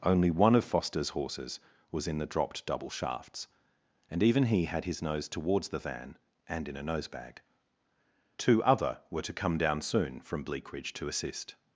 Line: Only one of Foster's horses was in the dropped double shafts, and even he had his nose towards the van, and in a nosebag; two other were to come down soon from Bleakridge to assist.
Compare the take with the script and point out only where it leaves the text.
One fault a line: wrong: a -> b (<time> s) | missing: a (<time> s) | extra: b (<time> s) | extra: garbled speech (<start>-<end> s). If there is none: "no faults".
no faults